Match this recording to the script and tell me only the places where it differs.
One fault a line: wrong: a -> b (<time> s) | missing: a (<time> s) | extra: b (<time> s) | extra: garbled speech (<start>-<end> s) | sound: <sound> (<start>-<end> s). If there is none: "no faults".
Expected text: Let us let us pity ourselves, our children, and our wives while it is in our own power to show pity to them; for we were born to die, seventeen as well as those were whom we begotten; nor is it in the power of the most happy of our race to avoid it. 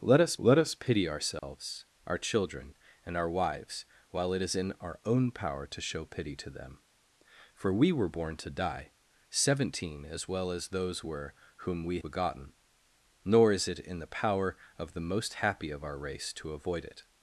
sound: dropout (1.4-1.4 s)